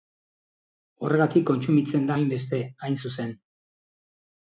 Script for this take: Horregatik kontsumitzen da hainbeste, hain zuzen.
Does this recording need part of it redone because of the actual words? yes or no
no